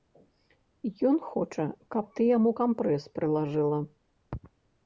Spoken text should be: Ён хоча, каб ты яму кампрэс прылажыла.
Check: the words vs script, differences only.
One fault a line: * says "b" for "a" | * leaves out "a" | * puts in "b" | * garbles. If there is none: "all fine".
all fine